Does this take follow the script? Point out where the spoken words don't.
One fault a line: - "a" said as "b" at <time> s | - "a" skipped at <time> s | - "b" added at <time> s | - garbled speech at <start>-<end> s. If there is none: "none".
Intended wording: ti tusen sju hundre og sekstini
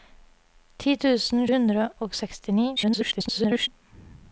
- "sju" skipped at 1.4 s
- garbled speech at 2.8-3.7 s